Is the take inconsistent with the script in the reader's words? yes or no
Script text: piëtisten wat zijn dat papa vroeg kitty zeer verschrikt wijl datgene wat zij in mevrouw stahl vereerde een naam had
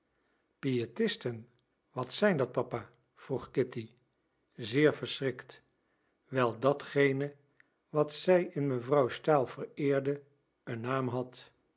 no